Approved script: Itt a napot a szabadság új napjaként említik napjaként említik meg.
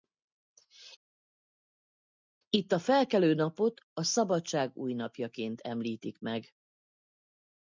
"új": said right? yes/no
yes